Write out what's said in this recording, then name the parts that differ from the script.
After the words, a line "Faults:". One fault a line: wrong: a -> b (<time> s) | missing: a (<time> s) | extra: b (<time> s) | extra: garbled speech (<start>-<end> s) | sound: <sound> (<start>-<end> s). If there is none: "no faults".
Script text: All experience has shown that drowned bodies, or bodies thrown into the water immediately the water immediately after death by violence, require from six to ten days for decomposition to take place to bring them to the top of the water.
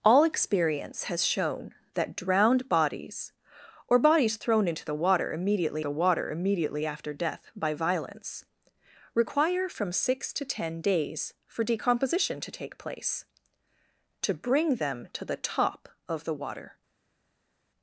All experience has shown that drowned bodies, or bodies thrown into the water immediately the water immediately after death by violence, require from six to ten days for decomposition to take place to bring them to the top of the water.
Faults:
no faults